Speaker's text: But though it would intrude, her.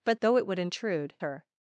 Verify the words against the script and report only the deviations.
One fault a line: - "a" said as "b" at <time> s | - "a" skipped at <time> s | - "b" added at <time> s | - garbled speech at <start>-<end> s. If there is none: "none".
none